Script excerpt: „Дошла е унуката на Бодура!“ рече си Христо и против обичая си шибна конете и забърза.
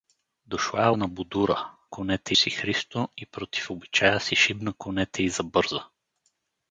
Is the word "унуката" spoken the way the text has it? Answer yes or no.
no